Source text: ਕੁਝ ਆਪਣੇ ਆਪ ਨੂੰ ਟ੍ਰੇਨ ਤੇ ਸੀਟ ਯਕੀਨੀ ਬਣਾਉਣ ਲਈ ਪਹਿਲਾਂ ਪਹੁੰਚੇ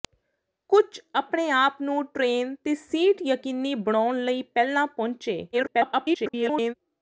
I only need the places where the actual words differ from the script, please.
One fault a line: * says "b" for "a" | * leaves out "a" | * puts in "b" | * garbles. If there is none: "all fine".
* garbles